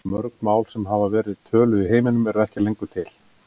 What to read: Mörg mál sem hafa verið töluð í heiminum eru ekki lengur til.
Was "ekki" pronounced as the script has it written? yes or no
yes